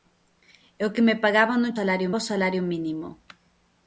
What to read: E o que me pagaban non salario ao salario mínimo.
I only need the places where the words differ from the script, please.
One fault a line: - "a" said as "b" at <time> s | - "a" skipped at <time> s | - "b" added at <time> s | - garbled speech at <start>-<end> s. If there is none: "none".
none